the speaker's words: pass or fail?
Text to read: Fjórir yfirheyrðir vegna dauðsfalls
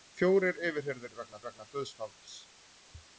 fail